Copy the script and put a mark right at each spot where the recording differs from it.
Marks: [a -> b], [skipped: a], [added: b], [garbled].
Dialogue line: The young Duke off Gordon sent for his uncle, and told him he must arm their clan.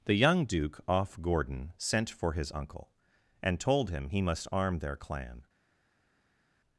The young Duke off Gordon sent for his uncle, and told him he must arm their clan.